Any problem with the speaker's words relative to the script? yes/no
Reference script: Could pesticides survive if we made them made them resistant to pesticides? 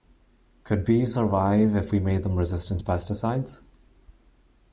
yes